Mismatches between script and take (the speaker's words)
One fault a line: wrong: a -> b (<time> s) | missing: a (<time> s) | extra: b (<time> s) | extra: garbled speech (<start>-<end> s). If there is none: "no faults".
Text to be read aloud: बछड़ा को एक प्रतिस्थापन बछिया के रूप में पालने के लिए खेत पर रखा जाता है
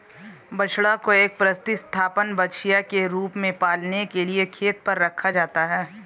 no faults